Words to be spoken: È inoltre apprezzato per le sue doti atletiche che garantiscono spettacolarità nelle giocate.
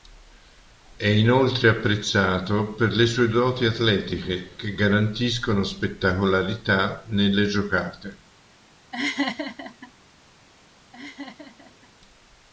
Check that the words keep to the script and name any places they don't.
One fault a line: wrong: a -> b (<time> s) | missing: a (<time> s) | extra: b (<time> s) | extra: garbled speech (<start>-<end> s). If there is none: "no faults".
no faults